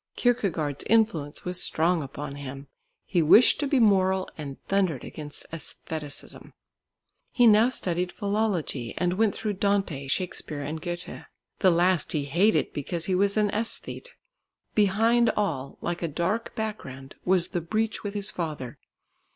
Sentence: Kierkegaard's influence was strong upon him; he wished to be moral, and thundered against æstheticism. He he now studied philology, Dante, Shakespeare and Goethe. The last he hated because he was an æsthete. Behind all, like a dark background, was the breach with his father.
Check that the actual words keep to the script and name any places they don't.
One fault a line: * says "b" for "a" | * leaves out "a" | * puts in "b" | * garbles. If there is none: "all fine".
* leaves out "he"
* puts in "and went through"